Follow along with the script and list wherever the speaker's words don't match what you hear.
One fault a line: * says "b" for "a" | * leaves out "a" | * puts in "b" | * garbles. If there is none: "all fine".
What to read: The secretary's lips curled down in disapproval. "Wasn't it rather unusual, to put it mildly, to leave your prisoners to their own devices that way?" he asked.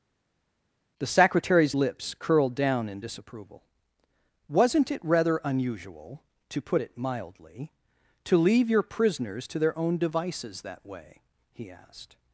all fine